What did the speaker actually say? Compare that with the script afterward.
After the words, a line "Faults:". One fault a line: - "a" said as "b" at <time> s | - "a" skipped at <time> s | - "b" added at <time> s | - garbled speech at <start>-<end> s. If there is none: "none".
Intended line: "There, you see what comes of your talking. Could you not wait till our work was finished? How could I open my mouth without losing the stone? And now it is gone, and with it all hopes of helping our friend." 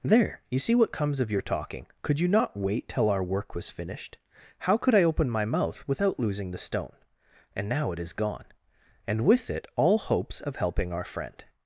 "There, you see what comes of your talking. Could you not wait till our work was finished? How could I open my mouth without losing the stone? And now it is gone, and with it all hopes of helping our friend."
Faults:
none